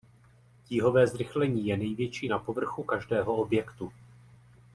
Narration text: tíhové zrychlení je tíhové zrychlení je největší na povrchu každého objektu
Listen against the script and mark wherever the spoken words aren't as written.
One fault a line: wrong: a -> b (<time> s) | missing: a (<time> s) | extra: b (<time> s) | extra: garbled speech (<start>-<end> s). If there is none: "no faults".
missing: tíhové zrychlení je (1.8 s)